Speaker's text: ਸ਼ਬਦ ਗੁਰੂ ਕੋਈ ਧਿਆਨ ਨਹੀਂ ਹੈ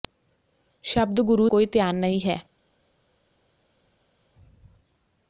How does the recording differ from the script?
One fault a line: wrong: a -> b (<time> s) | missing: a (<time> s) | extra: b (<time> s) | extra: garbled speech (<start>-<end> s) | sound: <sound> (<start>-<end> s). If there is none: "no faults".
no faults